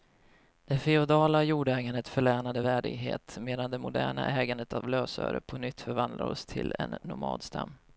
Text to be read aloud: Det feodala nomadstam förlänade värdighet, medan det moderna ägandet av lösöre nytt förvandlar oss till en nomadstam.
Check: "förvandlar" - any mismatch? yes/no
no